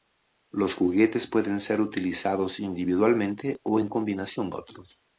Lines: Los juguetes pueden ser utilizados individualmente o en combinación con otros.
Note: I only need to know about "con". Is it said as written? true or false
false